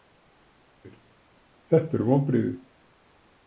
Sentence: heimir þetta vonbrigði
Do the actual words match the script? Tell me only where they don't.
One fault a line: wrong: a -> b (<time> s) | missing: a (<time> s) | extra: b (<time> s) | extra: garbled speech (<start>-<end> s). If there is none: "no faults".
extra: eru (2.0 s)